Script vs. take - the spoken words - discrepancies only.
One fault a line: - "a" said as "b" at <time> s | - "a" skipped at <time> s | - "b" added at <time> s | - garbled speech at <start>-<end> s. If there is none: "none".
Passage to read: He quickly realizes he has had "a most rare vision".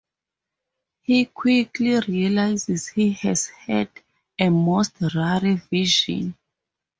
none